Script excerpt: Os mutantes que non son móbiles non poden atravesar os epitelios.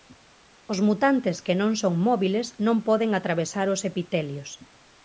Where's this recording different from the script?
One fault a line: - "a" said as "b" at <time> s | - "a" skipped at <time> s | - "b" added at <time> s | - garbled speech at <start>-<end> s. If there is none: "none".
none